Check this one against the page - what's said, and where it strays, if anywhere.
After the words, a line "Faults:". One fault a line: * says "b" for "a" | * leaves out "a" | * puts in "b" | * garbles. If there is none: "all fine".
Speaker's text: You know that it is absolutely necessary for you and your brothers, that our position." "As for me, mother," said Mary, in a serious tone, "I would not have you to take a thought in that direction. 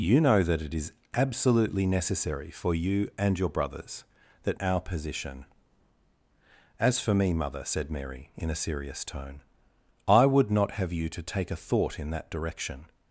You know that it is absolutely necessary for you and your brothers, that our position." "As for me, mother," said Mary, in a serious tone, "I would not have you to take a thought in that direction.
Faults:
all fine